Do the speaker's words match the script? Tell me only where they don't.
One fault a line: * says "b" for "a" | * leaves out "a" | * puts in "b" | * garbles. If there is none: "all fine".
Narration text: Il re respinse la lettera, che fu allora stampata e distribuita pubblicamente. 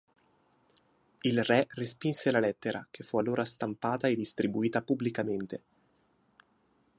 all fine